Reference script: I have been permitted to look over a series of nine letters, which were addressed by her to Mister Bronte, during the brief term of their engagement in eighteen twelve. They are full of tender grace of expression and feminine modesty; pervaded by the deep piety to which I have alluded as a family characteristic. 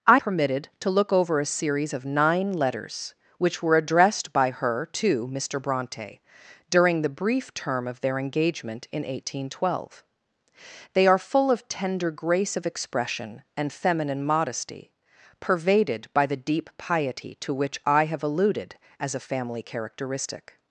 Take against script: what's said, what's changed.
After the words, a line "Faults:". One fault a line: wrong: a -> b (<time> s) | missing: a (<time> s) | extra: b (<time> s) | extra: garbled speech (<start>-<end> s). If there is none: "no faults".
I permitted to look over a series of nine letters, which were addressed by her to Mister Bronte, during the brief term of their engagement in eighteen twelve. They are full of tender grace of expression and feminine modesty; pervaded by the deep piety to which I have alluded as a family characteristic.
Faults:
missing: have been (0.2 s)